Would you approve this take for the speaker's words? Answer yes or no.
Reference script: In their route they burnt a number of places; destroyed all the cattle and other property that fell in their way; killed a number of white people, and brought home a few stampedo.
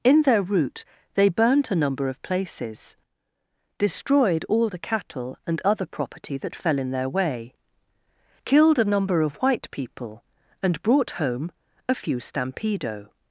yes